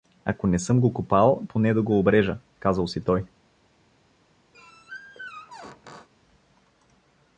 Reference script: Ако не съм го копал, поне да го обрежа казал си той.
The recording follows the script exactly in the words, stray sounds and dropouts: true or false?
false